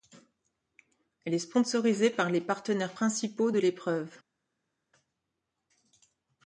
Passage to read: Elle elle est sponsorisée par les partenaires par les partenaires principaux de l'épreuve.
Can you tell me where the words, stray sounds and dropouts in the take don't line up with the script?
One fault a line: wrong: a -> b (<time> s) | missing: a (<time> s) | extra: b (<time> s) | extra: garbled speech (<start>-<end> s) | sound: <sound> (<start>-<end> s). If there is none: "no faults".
missing: elle (1.4 s)
missing: par les partenaires (3.0 s)